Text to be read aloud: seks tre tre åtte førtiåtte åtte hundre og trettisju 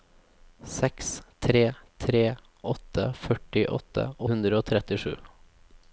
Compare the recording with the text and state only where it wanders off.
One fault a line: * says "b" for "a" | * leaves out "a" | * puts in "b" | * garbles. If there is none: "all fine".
* leaves out "åtte"